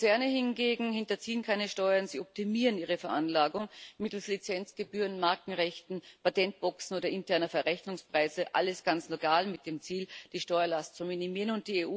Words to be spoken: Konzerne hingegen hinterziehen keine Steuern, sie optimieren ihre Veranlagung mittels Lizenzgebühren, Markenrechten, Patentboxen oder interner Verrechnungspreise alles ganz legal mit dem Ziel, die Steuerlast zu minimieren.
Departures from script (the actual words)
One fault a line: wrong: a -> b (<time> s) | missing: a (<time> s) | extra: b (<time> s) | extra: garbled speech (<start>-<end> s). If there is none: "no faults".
no faults